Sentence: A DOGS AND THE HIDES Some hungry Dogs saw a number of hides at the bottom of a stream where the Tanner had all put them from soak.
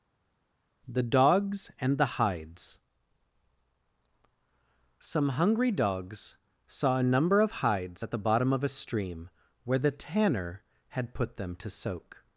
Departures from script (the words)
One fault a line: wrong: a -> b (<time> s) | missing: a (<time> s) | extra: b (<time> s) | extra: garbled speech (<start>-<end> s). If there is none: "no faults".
wrong: A -> THE (0.9 s)
missing: all (11.2 s)
wrong: from -> to (11.6 s)